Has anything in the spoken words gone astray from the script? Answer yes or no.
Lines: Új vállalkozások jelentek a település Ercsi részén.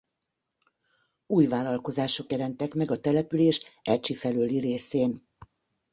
yes